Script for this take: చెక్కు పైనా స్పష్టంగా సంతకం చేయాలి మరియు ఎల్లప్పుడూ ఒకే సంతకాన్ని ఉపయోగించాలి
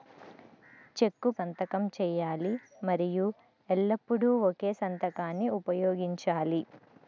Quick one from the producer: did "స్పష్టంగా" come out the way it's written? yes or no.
no